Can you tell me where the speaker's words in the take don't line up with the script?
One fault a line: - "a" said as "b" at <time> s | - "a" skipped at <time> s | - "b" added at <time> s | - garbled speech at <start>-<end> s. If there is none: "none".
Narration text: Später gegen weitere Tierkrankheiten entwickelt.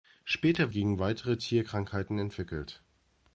none